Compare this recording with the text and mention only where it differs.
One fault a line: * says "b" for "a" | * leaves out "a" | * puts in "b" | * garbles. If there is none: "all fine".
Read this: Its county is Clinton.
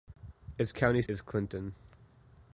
all fine